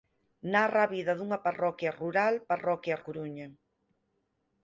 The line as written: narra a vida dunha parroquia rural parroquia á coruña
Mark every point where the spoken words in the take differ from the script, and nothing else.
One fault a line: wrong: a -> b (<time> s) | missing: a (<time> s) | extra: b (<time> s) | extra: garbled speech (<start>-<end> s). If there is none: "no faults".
no faults